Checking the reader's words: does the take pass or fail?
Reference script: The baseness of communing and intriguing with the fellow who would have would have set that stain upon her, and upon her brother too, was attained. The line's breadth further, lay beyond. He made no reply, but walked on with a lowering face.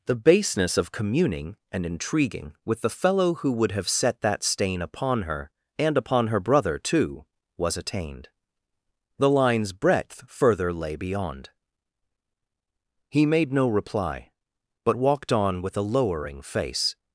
fail